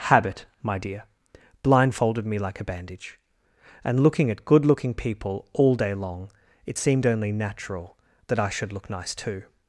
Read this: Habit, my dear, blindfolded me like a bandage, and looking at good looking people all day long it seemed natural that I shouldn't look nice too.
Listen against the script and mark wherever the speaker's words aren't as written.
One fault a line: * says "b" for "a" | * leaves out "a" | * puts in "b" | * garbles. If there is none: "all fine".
* puts in "only"
* says "should" for "shouldn't"